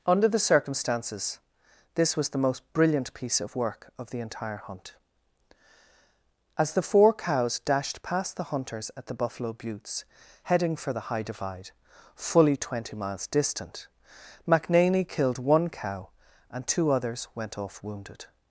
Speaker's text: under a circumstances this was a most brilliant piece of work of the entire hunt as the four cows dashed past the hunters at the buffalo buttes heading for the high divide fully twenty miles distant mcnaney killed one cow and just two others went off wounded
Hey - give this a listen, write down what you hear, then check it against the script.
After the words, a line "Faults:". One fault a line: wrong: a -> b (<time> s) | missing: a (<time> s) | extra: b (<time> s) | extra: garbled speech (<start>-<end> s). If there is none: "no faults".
under the circumstances this was the most brilliant piece of work of the entire hunt as the four cows dashed past the hunters at the buffalo buttes heading for the high divide fully twenty miles distant mcnaney killed one cow and two others went off wounded
Faults:
wrong: a -> the (0.3 s)
wrong: a -> the (2.3 s)
missing: just (16.6 s)